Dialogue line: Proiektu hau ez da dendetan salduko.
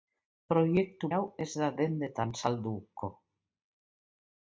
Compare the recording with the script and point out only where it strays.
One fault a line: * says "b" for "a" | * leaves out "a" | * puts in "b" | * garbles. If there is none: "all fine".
all fine